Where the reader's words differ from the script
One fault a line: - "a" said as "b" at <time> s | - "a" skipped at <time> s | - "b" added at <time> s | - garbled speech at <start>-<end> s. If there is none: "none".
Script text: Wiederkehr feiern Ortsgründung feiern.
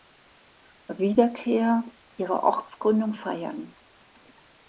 - "feiern" said as "ihrer" at 2.2 s